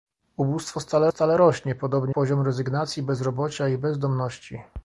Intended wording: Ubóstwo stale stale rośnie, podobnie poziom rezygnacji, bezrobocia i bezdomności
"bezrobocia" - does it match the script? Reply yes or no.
yes